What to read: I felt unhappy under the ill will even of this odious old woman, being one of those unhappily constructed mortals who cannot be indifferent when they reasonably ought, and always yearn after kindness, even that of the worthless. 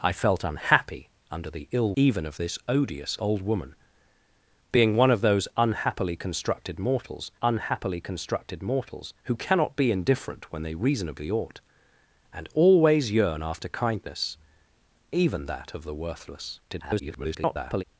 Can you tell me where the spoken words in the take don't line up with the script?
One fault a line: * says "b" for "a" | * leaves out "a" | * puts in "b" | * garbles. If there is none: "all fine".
* leaves out "will"
* puts in "unhappily constructed mortals"
* garbles